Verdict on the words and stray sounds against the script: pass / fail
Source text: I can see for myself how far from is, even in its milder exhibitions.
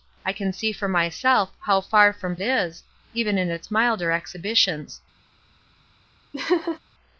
fail